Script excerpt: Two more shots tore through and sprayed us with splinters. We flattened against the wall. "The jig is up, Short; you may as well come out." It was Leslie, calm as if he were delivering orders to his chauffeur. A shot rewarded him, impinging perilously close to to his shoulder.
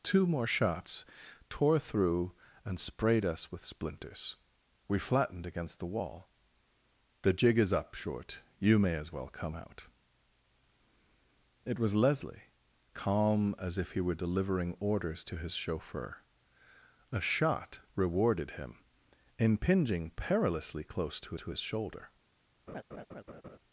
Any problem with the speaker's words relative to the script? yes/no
no